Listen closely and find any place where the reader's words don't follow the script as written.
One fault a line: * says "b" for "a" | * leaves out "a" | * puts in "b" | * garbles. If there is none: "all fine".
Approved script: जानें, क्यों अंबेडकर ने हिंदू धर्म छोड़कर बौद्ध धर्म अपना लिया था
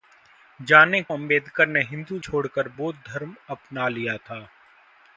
* leaves out "क्यों"
* leaves out "धर्म"